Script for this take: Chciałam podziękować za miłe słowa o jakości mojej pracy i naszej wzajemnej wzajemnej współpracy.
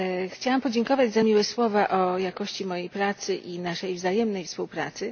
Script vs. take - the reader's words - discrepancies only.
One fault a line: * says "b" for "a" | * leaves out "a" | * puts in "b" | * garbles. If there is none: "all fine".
* leaves out "wzajemnej"